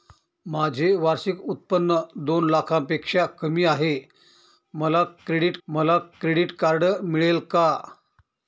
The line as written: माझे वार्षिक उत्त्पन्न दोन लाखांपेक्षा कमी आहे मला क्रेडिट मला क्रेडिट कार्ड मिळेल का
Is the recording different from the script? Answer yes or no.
no